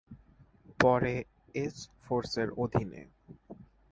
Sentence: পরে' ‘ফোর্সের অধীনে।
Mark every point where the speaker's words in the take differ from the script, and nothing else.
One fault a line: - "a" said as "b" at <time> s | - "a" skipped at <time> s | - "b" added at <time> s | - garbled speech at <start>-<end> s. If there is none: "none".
- "এস" added at 1.6 s